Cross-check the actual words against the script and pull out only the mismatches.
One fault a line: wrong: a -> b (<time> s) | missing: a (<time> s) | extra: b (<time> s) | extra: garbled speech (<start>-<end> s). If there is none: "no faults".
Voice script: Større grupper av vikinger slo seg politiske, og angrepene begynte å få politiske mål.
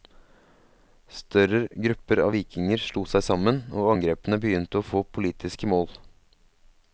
wrong: politiske -> sammen (3.3 s)